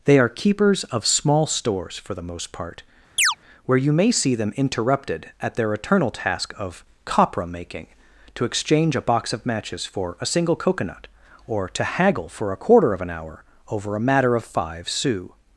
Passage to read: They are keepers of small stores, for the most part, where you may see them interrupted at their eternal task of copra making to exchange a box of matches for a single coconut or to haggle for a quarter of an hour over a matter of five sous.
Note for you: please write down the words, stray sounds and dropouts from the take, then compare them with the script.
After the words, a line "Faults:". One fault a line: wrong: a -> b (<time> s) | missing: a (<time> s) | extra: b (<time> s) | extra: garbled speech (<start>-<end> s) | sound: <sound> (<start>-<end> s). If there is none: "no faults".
They are keepers of small stores, for the most part, where you may see them interrupted at their eternal task of copra making to exchange a box of matches for a single coconut or to haggle for a quarter of an hour over a matter of five sous.
Faults:
sound: chirp (3.2-3.4 s)